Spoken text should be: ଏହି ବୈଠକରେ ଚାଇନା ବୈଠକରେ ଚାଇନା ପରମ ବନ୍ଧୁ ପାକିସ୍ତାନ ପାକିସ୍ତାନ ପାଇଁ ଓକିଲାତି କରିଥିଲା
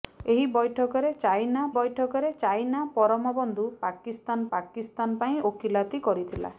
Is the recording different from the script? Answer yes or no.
no